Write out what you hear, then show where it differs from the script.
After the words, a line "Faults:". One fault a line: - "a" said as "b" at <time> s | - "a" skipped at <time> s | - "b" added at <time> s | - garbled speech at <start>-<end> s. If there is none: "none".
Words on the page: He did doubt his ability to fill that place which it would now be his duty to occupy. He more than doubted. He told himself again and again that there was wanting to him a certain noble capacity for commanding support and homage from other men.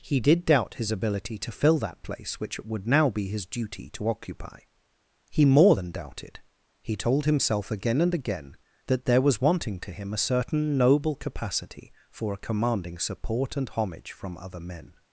He did doubt his ability to fill that place which it would now be his duty to occupy. He more than doubted. He told himself again and again that there was wanting to him a certain noble capacity for a commanding support and homage from other men.
Faults:
- "a" added at 12.3 s